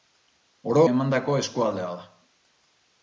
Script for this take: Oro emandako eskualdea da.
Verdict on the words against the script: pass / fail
pass